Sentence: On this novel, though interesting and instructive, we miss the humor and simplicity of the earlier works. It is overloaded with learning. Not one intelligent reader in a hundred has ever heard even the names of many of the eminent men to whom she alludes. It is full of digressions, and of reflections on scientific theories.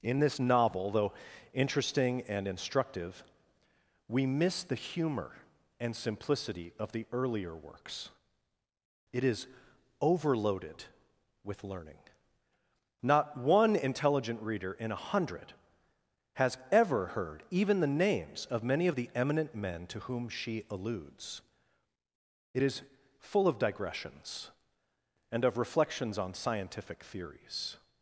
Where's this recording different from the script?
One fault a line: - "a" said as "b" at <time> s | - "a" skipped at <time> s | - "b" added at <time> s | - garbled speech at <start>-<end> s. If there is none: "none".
- "On" said as "In" at 0.0 s